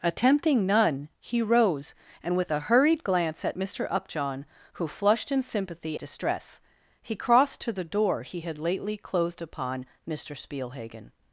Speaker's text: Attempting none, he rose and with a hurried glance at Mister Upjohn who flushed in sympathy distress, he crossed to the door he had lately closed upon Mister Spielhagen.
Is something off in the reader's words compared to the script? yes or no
no